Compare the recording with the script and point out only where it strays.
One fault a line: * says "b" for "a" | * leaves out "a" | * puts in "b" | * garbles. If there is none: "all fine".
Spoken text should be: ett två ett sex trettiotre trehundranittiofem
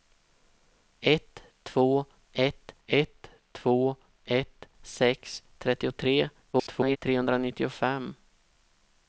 * puts in "ett två ett"
* garbles